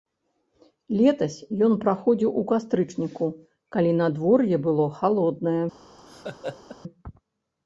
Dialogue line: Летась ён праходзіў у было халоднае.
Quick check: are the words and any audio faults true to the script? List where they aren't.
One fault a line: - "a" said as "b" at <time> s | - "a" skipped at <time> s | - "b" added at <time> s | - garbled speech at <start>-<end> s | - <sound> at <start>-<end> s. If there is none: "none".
- "кастрычніку калі надвор'е" added at 2.5 s
- laugh at 6.0-6.8 s